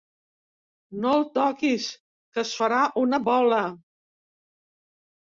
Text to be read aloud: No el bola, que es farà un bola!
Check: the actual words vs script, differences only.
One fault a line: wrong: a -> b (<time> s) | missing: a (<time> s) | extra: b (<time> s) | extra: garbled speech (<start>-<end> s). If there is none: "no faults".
wrong: bola -> toquis (1.4 s)
wrong: un -> una (3.0 s)